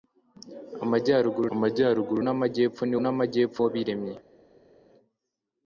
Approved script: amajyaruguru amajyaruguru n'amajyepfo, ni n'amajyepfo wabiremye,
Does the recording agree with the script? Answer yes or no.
yes